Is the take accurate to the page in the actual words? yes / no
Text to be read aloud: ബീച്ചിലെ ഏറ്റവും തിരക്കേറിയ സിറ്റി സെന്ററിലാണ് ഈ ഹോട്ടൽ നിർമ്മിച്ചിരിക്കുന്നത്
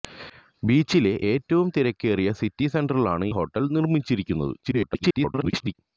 no